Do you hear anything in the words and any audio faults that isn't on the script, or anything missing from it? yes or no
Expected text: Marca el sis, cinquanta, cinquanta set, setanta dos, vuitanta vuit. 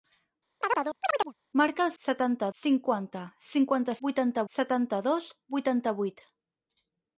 yes